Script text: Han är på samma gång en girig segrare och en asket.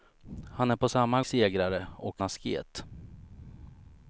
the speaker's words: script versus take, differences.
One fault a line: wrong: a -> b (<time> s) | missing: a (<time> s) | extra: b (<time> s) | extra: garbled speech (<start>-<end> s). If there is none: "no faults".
missing: gång en girig (1.2 s)
missing: en (2.2 s)